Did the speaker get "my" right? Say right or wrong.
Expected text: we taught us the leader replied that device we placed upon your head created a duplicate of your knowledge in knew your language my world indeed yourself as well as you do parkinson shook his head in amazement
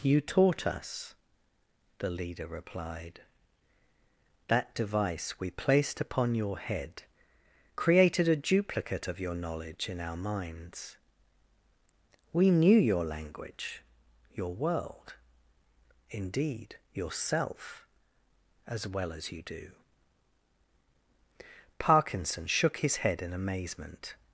wrong